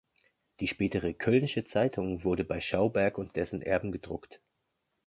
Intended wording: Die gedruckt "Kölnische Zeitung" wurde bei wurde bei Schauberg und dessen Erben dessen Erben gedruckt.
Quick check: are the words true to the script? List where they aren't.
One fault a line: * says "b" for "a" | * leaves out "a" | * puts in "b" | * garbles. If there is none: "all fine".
* says "spätere" for "gedruckt"
* leaves out "wurde bei"
* leaves out "dessen Erben"